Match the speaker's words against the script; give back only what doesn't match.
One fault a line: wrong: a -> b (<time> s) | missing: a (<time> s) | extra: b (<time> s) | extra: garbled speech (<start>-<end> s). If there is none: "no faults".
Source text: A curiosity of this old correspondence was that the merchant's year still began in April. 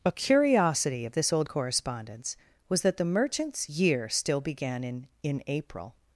extra: in (5.2 s)